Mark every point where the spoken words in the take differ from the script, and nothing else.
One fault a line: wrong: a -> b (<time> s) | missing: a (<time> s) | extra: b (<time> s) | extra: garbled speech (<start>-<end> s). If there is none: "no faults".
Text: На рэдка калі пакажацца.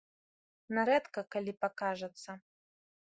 no faults